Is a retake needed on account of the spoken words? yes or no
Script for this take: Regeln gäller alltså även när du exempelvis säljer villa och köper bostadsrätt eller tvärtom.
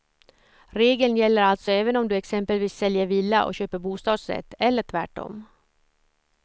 yes